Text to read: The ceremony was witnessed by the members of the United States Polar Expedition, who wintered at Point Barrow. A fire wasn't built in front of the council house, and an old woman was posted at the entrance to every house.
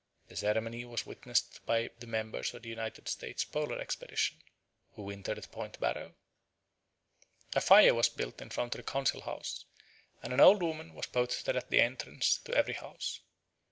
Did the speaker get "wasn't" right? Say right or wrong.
wrong